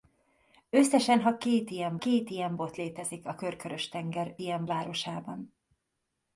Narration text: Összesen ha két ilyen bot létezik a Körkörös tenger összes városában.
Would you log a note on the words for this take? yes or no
yes